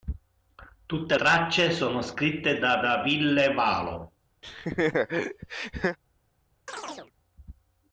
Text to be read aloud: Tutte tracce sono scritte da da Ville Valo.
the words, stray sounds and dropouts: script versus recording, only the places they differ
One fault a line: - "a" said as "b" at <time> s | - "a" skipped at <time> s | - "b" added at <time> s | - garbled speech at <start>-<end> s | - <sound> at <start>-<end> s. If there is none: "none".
- laugh at 4.4-6.0 s
- chirp at 6.7-7.1 s